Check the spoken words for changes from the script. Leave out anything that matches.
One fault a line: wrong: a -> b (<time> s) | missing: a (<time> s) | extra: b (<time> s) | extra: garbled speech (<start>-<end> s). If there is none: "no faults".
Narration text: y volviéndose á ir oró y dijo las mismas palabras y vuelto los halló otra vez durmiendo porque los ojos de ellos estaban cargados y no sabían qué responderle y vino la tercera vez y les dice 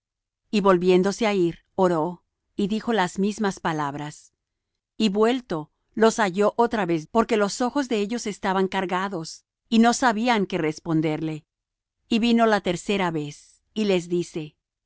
missing: durmiendo (7.0 s)